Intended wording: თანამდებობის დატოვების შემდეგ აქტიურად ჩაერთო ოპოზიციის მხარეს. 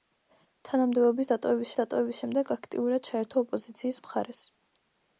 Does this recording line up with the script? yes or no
no